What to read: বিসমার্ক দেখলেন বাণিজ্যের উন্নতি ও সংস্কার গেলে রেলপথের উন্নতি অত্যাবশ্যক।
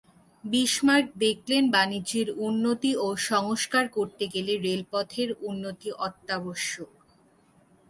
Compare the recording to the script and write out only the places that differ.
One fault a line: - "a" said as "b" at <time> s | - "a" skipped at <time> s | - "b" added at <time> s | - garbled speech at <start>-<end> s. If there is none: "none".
- "করতে" added at 3.9 s